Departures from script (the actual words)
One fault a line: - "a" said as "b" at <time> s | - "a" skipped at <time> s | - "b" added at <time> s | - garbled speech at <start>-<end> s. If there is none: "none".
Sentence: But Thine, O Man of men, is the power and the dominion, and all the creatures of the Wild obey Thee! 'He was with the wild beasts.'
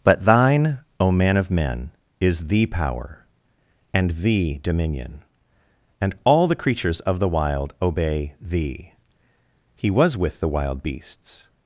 none